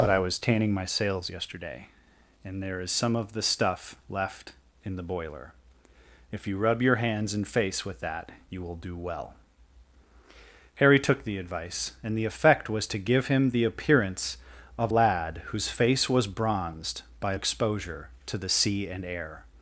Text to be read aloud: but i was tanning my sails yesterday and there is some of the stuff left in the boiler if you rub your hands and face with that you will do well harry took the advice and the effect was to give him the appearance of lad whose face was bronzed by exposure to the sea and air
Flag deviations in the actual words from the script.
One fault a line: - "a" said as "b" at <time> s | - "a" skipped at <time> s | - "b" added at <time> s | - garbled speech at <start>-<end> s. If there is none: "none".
none